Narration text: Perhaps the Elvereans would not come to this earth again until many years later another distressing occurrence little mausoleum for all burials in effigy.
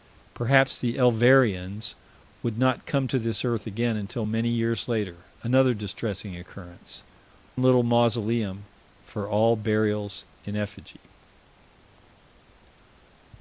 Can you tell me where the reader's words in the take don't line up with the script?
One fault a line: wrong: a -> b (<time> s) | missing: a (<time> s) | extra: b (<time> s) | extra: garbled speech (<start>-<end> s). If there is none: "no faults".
no faults